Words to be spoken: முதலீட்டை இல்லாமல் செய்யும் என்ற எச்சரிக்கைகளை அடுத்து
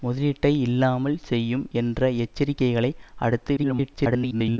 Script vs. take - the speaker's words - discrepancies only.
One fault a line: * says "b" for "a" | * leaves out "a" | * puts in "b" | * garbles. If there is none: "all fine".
* garbles